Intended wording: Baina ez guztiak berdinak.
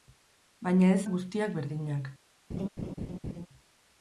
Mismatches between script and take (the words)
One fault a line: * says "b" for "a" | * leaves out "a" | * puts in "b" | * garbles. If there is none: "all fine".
all fine